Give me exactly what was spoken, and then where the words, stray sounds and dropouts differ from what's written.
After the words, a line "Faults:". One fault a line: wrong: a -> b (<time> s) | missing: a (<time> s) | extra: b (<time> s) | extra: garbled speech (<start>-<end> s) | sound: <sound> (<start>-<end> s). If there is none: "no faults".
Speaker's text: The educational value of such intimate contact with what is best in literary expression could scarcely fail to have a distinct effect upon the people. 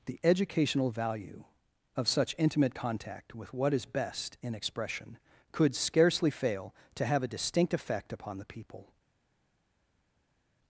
The educational value of such intimate contact with what is best in expression could scarcely fail to have a distinct effect upon the people.
Faults:
missing: literary (4.5 s)